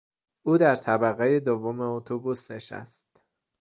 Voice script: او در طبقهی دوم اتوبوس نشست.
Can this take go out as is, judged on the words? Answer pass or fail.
pass